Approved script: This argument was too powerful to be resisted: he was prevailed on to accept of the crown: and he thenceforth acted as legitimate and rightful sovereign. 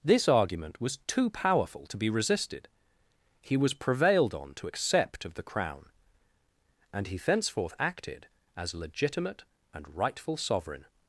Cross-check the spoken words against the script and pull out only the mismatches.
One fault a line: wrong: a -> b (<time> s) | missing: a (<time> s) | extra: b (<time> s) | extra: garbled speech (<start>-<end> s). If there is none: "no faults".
no faults